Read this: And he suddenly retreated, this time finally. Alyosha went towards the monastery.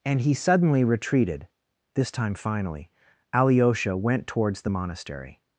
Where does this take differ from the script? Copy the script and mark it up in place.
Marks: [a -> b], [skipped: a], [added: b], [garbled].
And he suddenly retreated, this time finally. Alyosha went towards the monastery.